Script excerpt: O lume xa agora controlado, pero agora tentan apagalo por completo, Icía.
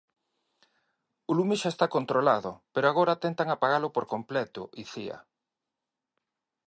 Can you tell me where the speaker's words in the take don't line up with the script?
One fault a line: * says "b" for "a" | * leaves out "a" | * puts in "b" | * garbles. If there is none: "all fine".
* says "está" for "agora"